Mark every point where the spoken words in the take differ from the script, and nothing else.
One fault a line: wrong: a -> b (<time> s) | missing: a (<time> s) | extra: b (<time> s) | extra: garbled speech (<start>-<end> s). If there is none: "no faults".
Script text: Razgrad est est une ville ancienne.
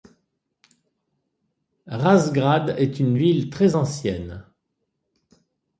missing: est (3.0 s)
extra: très (3.5 s)